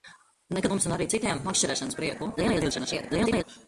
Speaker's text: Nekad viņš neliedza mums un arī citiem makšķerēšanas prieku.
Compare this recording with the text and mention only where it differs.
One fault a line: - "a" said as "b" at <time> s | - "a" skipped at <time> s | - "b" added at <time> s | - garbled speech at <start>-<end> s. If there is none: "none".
- "viņš neliedza" skipped at 0.7 s
- garbled speech at 2.4-3.4 s